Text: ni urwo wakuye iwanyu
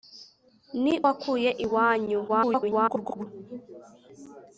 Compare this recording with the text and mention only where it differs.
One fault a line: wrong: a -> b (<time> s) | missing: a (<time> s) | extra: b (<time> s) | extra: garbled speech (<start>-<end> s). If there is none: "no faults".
missing: urwo (0.9 s)
extra: garbled speech (2.3-3.3 s)